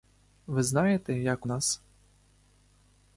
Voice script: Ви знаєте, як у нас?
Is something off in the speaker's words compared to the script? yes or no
no